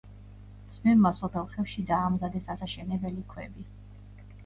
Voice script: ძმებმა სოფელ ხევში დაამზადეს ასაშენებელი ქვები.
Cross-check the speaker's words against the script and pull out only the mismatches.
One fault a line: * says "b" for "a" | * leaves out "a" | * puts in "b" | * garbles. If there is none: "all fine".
all fine